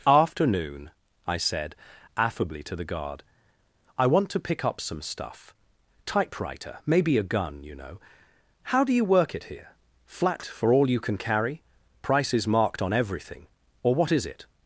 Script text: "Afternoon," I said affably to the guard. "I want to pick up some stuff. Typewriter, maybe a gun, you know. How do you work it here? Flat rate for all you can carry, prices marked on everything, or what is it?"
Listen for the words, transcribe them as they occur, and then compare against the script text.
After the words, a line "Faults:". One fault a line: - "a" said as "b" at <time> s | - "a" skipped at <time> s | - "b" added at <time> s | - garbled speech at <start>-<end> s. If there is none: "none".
"Afternoon," I said affably to the guard. "I want to pick up some stuff. Typewriter, maybe a gun, you know. How do you work it here? Flat for all you can carry, prices marked on everything, or what is it?"
Faults:
- "rate" skipped at 10.4 s